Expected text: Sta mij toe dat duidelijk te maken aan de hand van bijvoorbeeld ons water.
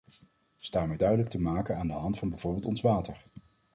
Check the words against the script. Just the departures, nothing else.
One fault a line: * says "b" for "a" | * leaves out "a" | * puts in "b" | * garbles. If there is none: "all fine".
* leaves out "toe dat"